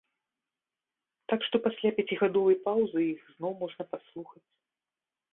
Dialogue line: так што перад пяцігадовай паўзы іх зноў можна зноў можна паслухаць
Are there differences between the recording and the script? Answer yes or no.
yes